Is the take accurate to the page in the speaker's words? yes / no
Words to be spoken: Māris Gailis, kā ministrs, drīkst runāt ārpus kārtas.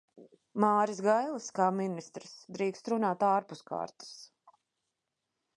yes